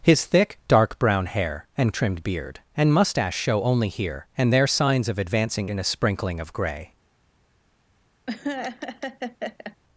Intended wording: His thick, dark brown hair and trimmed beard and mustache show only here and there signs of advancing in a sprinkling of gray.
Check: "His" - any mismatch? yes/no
no